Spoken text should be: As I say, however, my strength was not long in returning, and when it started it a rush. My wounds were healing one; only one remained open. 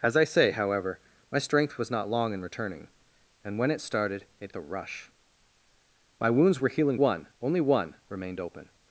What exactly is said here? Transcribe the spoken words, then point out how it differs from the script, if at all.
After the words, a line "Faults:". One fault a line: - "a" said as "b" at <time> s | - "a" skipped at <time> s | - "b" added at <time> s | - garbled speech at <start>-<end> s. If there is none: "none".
As I say, however, my strength was not long in returning, and when it started it a rush. My wounds were healing one; only one remained open.
Faults:
none